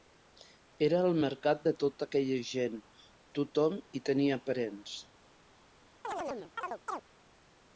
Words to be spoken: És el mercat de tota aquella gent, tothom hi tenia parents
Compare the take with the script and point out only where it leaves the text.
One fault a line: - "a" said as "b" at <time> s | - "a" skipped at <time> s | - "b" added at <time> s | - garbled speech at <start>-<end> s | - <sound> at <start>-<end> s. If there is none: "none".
- "És" said as "Era" at 0.8 s
- chirp at 6.0-7.0 s